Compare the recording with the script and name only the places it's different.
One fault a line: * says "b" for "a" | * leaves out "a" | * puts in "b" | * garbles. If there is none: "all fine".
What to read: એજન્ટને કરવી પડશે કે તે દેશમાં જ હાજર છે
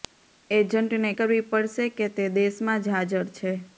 all fine